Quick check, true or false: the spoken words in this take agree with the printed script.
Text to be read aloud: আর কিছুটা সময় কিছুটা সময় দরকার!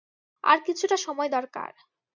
false